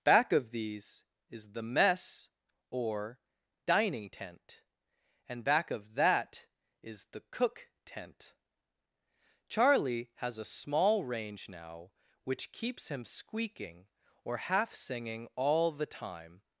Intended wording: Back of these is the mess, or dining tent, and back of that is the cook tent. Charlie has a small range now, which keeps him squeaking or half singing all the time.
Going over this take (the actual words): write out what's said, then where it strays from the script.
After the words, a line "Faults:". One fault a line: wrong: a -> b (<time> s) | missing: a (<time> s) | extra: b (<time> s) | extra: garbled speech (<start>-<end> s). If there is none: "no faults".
Back of these is the mess, or dining tent, and back of that is the cook tent. Charlie has a small range now, which keeps him squeaking or half singing all the time.
Faults:
no faults